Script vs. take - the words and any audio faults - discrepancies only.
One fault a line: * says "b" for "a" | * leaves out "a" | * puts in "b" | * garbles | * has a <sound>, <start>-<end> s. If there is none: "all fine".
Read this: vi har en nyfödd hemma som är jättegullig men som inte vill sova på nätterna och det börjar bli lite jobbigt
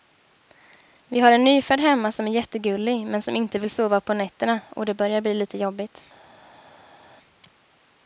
all fine